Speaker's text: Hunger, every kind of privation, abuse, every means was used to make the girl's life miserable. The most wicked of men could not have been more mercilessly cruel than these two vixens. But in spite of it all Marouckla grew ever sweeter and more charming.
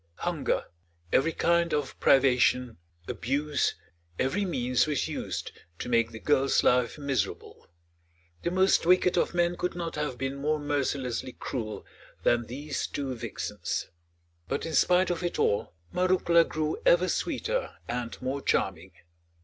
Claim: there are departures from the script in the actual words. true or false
false